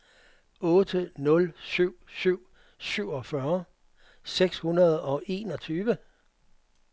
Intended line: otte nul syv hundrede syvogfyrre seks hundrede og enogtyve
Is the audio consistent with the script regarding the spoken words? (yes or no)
no